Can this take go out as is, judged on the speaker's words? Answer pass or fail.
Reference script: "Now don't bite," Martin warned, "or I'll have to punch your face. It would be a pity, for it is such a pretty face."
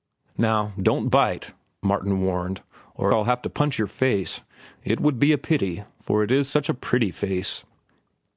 pass